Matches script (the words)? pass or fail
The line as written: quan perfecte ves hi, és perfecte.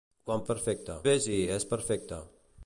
pass